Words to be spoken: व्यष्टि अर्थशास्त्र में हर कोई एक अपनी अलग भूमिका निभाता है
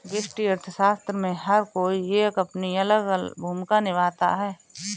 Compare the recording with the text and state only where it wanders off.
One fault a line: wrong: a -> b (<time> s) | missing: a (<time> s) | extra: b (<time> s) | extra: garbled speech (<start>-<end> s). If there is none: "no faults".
no faults